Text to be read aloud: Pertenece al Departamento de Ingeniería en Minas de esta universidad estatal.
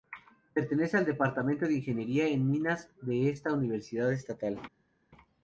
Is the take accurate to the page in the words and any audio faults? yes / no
yes